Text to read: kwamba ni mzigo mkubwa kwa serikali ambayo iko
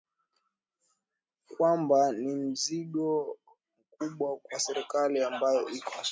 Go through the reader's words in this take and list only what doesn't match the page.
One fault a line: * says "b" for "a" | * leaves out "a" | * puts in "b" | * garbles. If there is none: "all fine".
all fine